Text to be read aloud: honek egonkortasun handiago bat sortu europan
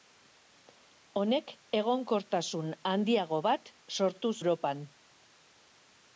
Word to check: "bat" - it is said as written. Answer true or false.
true